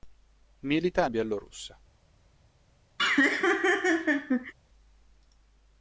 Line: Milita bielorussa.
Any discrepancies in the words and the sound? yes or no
yes